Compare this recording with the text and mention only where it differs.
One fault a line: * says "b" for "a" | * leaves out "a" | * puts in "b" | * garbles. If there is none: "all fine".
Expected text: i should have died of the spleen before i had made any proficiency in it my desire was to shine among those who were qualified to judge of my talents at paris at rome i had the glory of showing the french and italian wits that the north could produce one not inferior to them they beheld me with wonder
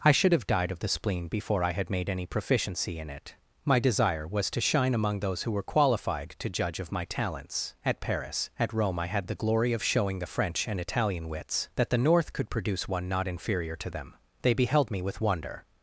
all fine